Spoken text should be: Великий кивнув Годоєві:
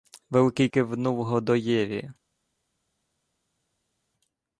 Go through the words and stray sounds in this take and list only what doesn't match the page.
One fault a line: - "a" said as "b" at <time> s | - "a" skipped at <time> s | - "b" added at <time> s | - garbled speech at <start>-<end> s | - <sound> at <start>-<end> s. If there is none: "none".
none